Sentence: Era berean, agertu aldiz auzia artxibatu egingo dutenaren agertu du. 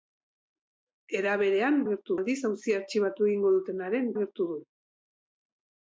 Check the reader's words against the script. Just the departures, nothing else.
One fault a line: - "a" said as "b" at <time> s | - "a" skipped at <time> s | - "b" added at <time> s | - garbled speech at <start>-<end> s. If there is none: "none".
none